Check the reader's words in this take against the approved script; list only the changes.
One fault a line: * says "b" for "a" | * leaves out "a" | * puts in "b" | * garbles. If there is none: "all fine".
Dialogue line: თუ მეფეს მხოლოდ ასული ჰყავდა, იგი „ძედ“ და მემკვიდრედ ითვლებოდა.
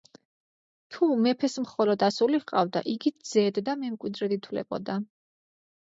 all fine